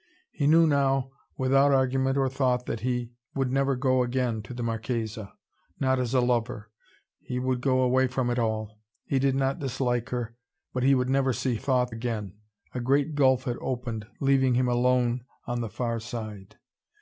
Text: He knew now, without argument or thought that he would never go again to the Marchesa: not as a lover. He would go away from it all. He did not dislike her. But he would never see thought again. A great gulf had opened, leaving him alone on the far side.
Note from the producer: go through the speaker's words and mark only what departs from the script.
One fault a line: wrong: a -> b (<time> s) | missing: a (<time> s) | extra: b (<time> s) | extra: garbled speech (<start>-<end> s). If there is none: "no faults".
no faults